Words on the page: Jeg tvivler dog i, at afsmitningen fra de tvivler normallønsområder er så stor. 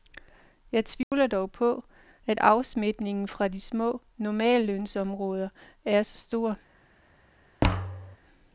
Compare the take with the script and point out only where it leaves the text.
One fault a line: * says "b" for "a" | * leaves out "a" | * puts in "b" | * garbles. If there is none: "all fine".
* says "på" for "i"
* says "små" for "tvivler"